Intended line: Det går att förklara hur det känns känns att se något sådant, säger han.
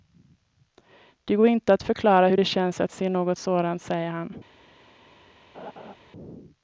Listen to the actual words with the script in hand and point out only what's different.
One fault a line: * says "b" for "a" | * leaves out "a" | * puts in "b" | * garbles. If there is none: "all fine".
* puts in "inte"
* leaves out "känns"